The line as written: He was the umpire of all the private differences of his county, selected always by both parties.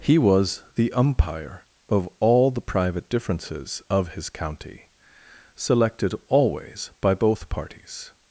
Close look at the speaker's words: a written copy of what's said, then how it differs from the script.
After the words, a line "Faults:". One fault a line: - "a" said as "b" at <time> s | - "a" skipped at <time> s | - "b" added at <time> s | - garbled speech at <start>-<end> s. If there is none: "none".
He was the umpire of all the private differences of his county, selected always by both parties.
Faults:
none